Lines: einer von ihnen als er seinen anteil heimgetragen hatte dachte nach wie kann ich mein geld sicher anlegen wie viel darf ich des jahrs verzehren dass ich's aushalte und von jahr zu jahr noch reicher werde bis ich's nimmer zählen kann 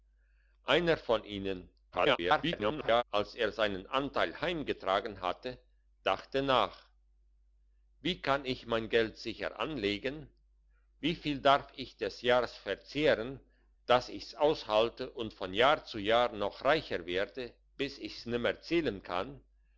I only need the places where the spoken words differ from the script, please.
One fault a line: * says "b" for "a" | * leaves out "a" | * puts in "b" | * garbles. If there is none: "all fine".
* garbles